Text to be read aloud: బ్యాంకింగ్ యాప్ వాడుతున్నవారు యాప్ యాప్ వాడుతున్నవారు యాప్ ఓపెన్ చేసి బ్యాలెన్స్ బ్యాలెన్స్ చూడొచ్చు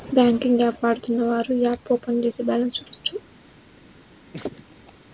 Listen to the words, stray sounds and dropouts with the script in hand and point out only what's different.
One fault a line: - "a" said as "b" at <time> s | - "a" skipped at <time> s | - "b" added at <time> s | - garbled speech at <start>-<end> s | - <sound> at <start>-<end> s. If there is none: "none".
- "యాప్ వాడుతున్నవారు యాప్" skipped at 1.9 s
- "బ్యాలెన్స్" skipped at 2.8 s
- laugh at 4.3-4.9 s